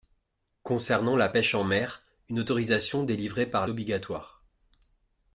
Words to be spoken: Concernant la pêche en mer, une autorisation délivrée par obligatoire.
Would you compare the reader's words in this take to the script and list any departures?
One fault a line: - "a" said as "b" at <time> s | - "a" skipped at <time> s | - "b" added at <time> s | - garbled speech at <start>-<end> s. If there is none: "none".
none